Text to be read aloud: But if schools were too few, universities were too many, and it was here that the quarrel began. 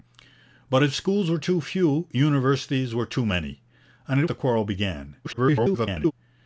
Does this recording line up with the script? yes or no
no